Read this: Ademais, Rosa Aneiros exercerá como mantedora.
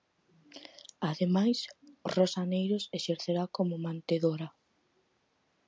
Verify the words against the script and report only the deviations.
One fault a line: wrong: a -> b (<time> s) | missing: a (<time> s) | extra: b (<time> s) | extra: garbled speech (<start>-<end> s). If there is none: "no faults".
no faults